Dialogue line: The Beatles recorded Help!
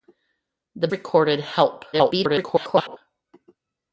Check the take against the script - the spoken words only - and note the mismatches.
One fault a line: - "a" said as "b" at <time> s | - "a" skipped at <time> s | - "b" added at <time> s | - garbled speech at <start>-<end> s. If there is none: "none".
- "Beatles" skipped at 0.9 s
- garbled speech at 1.9-3.0 s